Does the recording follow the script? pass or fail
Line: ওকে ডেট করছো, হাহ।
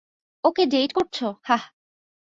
pass